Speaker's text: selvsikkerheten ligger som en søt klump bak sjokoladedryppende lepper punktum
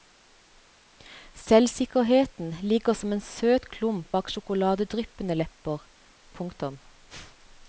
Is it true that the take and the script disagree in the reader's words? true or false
false